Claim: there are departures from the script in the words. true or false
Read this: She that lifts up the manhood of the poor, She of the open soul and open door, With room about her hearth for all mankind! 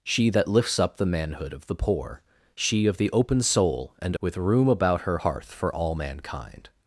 true